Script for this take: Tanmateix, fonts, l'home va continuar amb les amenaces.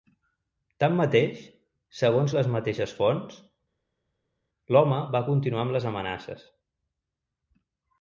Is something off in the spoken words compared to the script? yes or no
yes